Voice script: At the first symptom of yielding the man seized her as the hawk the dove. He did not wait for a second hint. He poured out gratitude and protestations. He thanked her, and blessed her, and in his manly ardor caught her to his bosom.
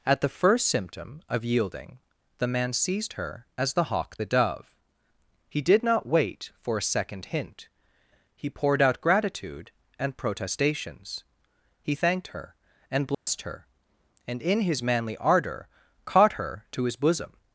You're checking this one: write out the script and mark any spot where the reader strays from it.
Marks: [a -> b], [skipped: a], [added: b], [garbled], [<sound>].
At the first symptom of yielding the man seized her as the hawk the dove. He did not wait for a second hint. He poured out gratitude and protestations. He thanked her, and blessed [dropout] her, and in his manly ardor caught her to his bosom.